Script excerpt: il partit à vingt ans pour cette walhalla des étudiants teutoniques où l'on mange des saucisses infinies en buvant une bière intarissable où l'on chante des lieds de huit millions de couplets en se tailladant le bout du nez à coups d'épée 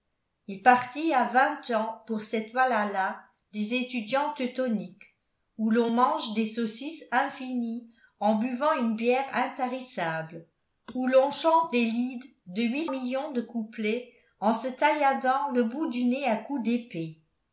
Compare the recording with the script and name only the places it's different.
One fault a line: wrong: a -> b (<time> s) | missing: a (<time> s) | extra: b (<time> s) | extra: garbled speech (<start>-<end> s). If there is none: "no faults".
no faults